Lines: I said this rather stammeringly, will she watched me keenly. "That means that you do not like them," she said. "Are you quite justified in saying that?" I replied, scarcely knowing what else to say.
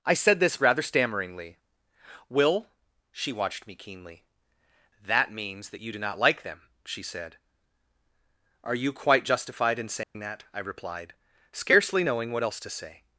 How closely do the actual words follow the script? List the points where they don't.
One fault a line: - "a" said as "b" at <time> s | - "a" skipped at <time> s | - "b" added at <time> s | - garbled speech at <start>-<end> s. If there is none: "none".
none